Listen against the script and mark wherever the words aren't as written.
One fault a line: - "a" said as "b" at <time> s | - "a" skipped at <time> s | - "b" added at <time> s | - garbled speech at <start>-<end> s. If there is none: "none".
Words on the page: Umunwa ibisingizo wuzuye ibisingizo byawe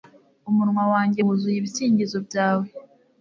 - "ibisingizo" said as "wanjye" at 0.9 s